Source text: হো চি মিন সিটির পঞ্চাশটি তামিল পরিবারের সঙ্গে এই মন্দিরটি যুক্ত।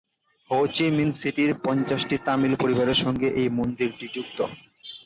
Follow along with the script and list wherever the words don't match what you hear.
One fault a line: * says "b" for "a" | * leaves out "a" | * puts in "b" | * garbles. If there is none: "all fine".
all fine